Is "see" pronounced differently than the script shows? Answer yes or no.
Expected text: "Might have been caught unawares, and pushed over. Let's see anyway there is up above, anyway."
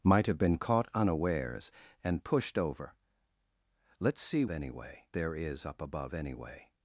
no